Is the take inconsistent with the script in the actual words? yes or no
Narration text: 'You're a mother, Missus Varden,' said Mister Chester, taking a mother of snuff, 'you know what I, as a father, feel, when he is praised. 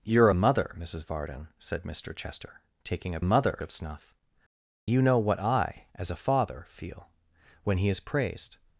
no